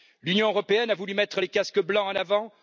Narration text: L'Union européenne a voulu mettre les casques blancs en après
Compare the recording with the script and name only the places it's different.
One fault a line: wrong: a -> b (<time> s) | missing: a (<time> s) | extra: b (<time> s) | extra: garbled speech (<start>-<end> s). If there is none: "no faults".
wrong: après -> avant (2.1 s)